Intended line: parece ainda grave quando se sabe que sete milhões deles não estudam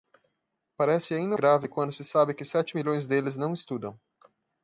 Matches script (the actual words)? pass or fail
pass